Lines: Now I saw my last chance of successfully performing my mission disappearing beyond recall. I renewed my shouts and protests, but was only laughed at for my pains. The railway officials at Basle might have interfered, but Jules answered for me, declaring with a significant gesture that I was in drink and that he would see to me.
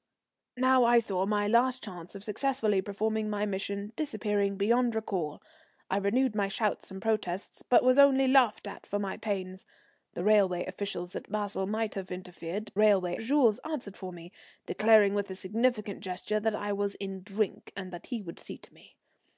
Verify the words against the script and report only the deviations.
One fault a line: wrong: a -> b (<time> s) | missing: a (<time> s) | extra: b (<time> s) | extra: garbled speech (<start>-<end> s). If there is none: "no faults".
wrong: but -> railway (12.8 s)